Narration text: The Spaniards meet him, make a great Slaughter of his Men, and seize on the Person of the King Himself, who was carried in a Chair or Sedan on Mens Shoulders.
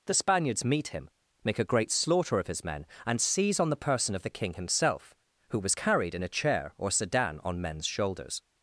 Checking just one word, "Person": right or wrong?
right